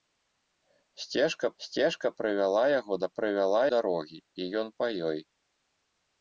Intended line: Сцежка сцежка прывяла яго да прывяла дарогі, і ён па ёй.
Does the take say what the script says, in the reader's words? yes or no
yes